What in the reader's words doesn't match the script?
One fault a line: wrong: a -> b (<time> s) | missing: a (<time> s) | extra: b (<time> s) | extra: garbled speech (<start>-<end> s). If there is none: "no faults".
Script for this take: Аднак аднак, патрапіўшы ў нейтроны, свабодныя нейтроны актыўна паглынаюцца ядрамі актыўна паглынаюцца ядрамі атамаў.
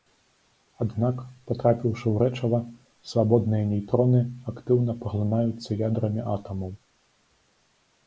missing: аднак (1.2 s)
wrong: нейтроны -> рэчыва (2.2 s)
missing: актыўна паглынаюцца ядрамі (6.2 s)